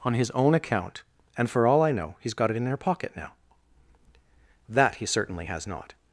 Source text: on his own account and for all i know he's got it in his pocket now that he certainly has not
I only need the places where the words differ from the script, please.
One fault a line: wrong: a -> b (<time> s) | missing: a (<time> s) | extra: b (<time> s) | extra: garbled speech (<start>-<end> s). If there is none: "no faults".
wrong: his -> her (2.6 s)